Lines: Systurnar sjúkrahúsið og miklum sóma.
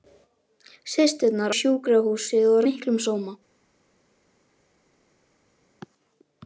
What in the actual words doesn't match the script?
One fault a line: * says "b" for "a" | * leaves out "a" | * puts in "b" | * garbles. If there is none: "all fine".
all fine